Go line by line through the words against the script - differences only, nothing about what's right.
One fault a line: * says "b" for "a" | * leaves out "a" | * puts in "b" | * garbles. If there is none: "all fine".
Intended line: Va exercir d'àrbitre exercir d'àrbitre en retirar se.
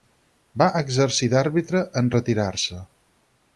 * leaves out "exercir d'àrbitre"